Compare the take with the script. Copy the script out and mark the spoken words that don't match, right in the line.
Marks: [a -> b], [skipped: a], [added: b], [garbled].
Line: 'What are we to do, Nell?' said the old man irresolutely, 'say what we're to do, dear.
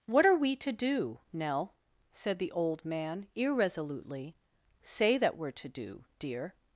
'What are we to do, Nell?' said the old man irresolutely, 'say [what -> that] we're to do, dear.